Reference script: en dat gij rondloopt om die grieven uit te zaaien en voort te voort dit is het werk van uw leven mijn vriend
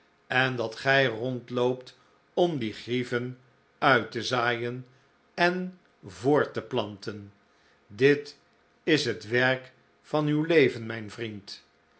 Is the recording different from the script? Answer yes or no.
yes